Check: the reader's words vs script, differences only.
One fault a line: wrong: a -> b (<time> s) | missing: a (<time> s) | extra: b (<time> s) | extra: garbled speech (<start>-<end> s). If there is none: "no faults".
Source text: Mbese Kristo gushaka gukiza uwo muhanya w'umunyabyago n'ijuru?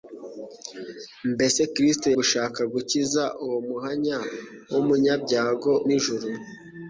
no faults